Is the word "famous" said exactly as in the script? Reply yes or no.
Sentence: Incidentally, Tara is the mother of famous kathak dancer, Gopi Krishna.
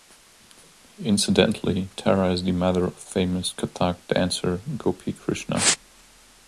yes